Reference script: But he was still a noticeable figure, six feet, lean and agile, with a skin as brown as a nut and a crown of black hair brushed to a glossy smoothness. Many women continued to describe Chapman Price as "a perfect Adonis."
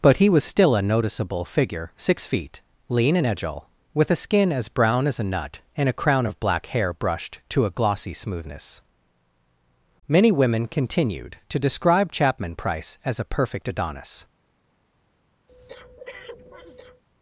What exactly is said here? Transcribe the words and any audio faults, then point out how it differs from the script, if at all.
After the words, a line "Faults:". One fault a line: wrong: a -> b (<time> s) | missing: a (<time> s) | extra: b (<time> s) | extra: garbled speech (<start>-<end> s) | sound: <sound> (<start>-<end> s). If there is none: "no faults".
But he was still a noticeable figure, six feet, lean and agile, with a skin as brown as a nut and a crown of black hair brushed to a glossy smoothness. Many women continued to describe Chapman Price as "a perfect Adonis."
Faults:
sound: breath (15.5-17.0 s)